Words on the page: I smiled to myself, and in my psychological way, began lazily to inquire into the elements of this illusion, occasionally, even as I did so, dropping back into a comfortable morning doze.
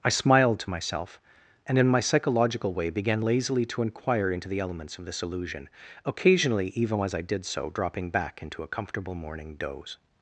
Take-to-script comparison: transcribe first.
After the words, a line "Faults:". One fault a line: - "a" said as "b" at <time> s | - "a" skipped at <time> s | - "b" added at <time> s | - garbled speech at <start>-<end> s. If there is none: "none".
I smiled to myself, and in my psychological way, began lazily to inquire into the elements of this illusion, occasionally, even as I did so, dropping back into a comfortable morning doze.
Faults:
none